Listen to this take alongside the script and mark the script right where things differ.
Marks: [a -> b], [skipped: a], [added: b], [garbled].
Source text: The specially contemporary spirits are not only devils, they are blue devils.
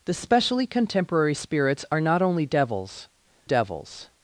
The specially contemporary spirits are not only devils, [skipped: they are blue] devils.